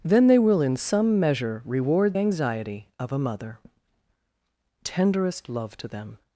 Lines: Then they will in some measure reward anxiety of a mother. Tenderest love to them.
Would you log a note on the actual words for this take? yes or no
no